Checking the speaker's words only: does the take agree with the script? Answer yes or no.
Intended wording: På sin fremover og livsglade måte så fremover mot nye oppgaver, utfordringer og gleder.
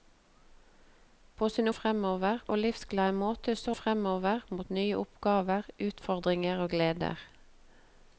yes